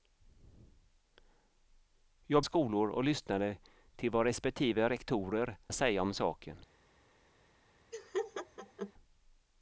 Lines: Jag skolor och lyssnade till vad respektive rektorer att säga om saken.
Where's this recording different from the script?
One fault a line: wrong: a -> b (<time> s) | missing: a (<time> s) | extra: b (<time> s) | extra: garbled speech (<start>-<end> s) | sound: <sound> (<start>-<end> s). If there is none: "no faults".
sound: laugh (7.9-8.9 s)